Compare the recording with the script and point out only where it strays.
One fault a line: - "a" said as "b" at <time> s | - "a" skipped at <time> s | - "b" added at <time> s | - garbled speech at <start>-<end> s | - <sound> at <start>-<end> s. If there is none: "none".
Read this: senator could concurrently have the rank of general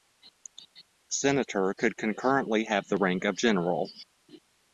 none